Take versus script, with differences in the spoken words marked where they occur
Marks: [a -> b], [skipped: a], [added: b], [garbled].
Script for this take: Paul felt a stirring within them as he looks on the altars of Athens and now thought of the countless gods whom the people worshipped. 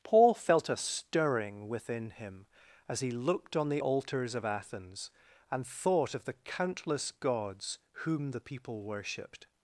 Paul felt a stirring within [them -> him] as he [looks -> looked] on the altars of Athens and [skipped: now] thought of the countless gods whom the people worshipped.